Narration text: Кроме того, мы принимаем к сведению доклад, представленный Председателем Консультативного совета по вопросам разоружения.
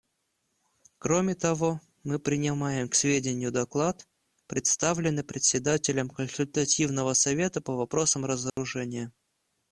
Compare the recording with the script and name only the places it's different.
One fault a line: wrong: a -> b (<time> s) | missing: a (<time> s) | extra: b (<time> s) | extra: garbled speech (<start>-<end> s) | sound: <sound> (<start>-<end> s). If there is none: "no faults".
sound: dropout (8.5-8.6 s)